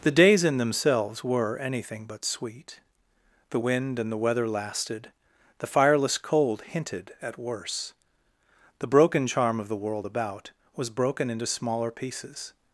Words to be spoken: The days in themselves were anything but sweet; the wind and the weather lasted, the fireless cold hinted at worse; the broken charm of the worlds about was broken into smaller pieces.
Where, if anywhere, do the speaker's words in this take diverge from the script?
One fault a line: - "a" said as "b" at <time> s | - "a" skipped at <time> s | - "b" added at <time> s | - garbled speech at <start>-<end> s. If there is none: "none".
- "worlds" said as "world" at 9.8 s